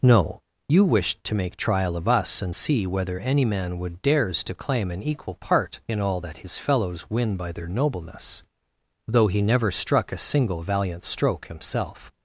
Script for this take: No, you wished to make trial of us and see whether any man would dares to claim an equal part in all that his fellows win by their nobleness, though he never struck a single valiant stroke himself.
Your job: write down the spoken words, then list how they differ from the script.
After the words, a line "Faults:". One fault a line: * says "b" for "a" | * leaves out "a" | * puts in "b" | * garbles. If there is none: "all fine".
No, you wished to make trial of us and see whether any man would dares to claim an equal part in all that his fellows win by their nobleness, though he never struck a single valiant stroke himself.
Faults:
all fine